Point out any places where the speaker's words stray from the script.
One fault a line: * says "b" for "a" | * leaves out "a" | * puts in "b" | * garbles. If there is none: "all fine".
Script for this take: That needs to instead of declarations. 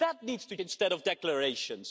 all fine